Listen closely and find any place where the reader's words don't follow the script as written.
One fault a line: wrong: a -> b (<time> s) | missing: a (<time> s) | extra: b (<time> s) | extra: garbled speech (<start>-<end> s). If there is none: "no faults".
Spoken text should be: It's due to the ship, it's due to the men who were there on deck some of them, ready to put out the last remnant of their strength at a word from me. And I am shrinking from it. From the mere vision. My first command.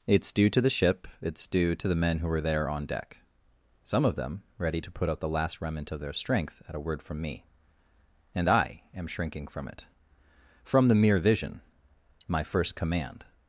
no faults